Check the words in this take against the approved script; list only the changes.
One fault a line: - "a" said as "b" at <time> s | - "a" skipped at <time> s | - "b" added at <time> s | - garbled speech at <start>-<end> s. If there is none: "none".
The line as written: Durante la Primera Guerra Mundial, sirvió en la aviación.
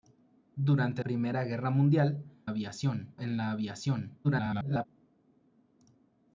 - "la" skipped at 1.0 s
- "sirvió" said as "aviación" at 2.5 s
- garbled speech at 4.2-4.9 s